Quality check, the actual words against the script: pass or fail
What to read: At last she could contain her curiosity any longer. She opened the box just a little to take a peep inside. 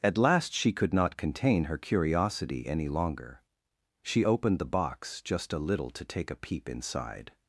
fail